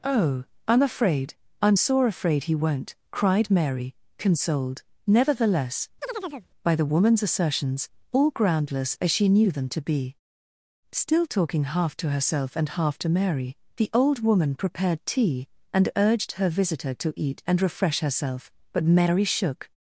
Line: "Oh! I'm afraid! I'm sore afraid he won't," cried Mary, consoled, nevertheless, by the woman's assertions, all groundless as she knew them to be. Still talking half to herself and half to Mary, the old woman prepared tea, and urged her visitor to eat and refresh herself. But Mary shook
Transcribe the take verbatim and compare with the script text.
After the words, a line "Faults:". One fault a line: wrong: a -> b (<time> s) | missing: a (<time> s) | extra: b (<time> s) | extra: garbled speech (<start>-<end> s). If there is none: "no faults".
"Oh! I'm afraid! I'm sore afraid he won't," cried Mary, consoled, nevertheless, by the woman's assertions, all groundless as she knew them to be. Still talking half to herself and half to Mary, the old woman prepared tea, and urged her visitor to eat and refresh herself. But Mary shook
Faults:
no faults